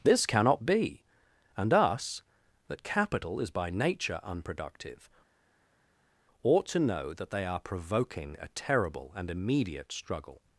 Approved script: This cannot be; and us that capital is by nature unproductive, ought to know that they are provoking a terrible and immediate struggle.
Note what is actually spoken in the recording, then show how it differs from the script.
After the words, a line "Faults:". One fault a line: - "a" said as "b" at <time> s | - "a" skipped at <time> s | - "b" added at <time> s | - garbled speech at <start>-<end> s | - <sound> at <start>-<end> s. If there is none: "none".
This cannot be; and us that capital is by nature unproductive, ought to know that they are provoking a terrible and immediate struggle.
Faults:
none